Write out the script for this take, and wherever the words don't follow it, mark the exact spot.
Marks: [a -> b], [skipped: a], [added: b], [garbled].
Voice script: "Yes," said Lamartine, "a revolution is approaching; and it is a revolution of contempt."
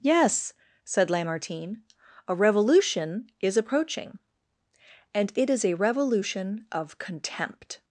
"Yes," said Lamartine, "a revolution is approaching; and it is a revolution of contempt."